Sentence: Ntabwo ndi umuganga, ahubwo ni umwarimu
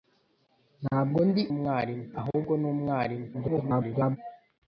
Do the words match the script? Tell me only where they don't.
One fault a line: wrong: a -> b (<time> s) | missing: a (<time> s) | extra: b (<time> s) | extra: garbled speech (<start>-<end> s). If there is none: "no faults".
wrong: umuganga -> umwarimu (1.5 s)
extra: garbled speech (3.3-4.2 s)